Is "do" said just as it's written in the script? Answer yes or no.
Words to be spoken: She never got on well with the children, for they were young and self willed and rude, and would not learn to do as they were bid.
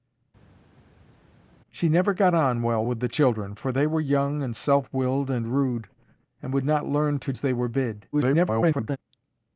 no